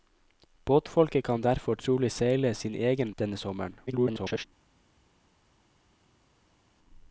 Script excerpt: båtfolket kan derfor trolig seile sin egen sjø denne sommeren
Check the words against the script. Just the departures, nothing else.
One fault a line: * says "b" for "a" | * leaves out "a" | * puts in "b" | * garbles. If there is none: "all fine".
* leaves out "sjø"
* garbles